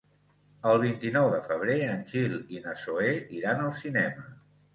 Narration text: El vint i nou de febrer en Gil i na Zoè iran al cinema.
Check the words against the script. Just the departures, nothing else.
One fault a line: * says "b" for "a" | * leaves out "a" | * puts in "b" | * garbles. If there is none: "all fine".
all fine